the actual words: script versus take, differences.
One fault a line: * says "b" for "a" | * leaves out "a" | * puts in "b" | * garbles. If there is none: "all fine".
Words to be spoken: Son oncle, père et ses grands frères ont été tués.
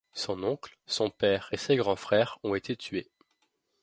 * puts in "son"